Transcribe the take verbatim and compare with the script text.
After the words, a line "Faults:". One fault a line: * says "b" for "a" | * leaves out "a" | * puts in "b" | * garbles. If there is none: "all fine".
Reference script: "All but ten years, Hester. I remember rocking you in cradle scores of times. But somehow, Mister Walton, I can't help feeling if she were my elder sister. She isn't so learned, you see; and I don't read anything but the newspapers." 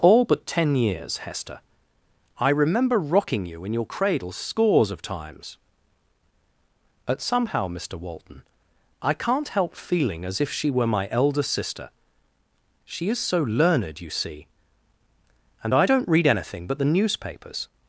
"All but ten years, Hester. I remember rocking you in your cradle scores of times. But somehow, Mister Walton, I can't help feeling as if she were my elder sister. She is so learned, you see; and I don't read anything but the newspapers."
Faults:
* puts in "your"
* puts in "as"
* says "is" for "isn't"